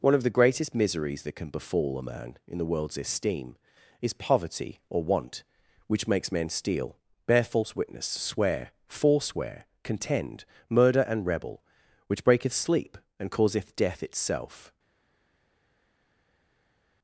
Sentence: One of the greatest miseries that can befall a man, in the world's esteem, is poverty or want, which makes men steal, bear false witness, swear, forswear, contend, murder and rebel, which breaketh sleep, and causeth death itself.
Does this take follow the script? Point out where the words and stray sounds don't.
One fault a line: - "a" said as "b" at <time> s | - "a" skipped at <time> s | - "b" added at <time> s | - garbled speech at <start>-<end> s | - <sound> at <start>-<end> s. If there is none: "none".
none